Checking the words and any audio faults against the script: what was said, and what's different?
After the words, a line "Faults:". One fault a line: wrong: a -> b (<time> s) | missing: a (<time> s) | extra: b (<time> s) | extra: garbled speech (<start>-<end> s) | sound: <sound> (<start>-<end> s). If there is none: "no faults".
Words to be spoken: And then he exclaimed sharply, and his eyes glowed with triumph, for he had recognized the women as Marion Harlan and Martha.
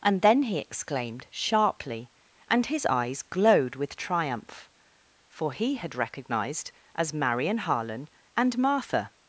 And then he exclaimed sharply, and his eyes glowed with triumph, for he had recognized as Marion Harlan and Martha.
Faults:
missing: the women (6.7 s)